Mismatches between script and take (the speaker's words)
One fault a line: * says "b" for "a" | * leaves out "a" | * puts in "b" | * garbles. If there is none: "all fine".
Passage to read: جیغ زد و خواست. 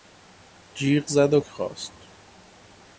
all fine